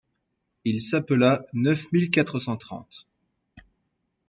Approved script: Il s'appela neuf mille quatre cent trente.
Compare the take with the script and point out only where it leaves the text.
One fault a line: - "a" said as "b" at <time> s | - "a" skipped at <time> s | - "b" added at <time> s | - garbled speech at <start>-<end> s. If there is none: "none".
none